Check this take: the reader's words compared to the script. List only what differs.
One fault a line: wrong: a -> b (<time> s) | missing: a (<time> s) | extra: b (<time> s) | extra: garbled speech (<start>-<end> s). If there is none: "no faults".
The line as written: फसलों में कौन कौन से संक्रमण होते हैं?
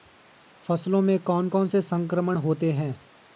no faults